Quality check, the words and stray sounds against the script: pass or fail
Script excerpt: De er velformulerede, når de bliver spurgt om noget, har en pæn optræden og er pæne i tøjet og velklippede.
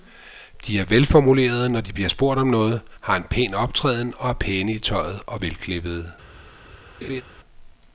fail